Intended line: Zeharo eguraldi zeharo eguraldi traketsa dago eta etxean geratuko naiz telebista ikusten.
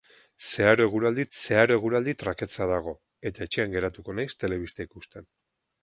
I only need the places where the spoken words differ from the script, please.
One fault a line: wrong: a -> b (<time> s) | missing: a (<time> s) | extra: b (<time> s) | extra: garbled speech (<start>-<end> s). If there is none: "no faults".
no faults